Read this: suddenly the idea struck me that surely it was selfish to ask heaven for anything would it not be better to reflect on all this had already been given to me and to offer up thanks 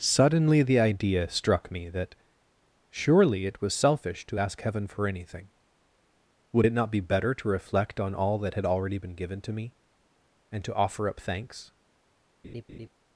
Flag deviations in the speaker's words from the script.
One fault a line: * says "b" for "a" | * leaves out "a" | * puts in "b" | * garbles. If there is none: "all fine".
* says "that" for "this"